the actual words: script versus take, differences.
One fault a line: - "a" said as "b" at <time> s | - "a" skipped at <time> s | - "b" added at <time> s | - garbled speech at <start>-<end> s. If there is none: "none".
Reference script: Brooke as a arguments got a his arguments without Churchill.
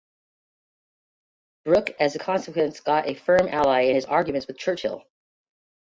- "arguments" said as "consequence" at 2.2 s
- "firm ally in" added at 3.1 s
- "without" said as "with" at 4.5 s